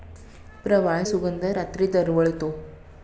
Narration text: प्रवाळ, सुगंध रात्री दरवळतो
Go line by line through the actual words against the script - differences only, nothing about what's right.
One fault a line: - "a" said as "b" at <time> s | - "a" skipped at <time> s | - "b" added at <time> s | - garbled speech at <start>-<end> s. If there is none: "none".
none